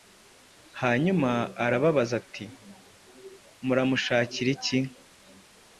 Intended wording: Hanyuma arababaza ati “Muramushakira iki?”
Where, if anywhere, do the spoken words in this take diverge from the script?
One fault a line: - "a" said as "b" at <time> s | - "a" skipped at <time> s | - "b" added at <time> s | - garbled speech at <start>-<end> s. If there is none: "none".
none